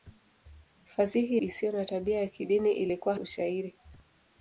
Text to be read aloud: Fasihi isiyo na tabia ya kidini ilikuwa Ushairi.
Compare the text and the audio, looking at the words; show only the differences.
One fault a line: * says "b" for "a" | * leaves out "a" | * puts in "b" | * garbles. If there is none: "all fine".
all fine